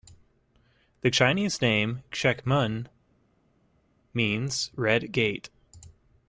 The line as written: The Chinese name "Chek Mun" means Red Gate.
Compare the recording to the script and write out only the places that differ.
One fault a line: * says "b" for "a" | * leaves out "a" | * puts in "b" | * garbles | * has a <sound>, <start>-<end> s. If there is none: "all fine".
all fine